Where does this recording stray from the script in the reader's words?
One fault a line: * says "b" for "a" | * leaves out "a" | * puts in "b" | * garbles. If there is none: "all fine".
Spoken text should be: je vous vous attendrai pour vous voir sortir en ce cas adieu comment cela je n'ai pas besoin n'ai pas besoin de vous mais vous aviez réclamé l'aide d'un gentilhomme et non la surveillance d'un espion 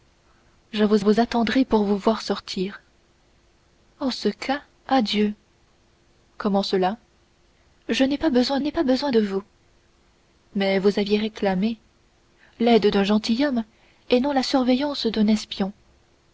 all fine